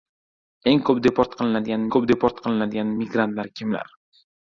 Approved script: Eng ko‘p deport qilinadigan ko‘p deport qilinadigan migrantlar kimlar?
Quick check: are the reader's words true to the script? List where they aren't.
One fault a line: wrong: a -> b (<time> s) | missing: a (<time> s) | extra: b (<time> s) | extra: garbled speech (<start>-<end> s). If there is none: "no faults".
no faults